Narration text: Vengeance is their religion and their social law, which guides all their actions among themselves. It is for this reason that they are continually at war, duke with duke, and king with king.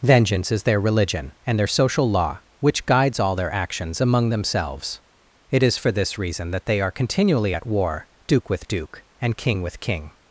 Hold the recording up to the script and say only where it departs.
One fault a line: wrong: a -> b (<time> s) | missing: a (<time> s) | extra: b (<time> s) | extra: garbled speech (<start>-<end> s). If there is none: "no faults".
no faults